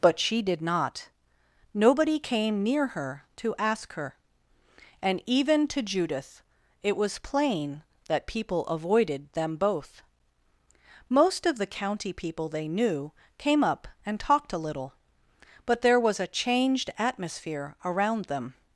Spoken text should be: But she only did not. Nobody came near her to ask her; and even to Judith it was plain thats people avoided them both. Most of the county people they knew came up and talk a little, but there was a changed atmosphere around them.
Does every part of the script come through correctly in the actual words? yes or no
no